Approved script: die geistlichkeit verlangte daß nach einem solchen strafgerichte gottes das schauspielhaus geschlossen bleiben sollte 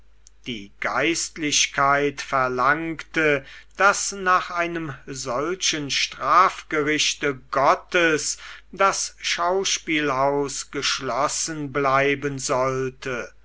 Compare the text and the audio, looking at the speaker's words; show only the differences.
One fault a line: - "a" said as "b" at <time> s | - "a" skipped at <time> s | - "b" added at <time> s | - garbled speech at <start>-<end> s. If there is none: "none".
none